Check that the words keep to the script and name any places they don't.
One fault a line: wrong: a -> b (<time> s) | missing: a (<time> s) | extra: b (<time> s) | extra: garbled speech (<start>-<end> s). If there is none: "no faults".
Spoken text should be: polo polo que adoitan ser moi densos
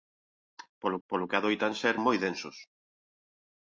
no faults